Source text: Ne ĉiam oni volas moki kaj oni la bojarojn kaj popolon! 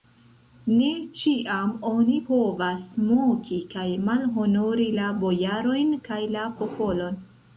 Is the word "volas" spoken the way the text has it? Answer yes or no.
no